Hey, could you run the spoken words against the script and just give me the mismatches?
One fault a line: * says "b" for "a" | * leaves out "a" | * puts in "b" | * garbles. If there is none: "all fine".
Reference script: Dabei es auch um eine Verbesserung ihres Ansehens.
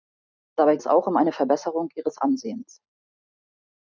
all fine